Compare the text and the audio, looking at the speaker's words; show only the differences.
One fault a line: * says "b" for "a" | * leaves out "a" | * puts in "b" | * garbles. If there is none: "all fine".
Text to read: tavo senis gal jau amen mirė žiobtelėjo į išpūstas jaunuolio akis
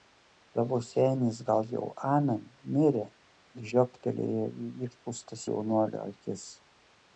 all fine